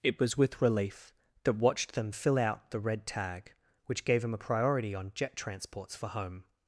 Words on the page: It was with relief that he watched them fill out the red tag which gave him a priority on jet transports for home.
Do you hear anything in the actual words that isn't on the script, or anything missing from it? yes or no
yes